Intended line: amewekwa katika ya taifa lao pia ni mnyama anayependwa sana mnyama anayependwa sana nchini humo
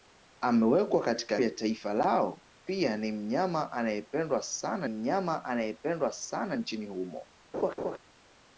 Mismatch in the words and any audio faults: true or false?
true